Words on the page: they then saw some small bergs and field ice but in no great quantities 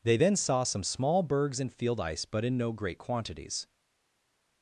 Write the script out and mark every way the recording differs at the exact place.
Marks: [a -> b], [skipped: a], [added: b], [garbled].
they then saw some small bergs and field ice but in no great quantities